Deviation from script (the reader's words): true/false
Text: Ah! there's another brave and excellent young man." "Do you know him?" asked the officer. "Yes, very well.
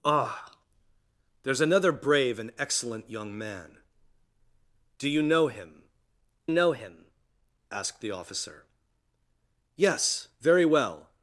true